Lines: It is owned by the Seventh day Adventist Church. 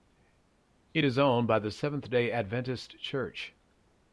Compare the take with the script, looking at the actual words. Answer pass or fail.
pass